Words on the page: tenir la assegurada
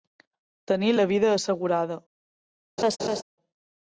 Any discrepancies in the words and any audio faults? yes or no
yes